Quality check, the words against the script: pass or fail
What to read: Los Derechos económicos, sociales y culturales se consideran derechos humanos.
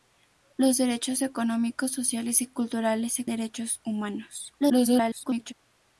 fail